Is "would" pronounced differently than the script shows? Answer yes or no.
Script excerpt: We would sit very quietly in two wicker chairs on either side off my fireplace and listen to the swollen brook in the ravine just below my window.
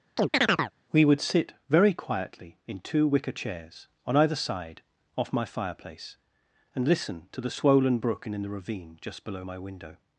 no